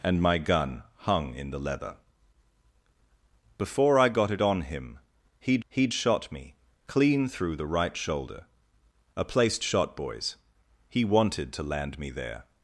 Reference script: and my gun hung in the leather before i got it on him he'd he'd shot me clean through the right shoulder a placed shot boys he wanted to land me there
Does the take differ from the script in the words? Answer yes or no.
no